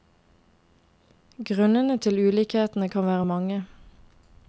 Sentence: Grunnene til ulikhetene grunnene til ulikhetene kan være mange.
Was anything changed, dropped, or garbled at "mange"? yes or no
no